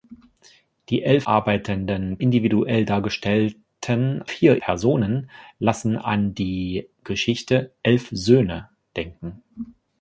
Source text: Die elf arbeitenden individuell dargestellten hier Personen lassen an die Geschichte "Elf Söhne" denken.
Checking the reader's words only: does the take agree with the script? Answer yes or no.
yes